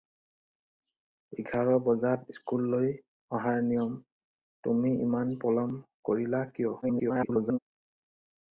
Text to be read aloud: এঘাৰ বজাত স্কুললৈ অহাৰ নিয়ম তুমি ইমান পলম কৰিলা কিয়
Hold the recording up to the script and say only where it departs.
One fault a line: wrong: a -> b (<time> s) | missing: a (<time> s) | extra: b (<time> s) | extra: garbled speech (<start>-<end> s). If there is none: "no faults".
extra: garbled speech (6.8-7.6 s)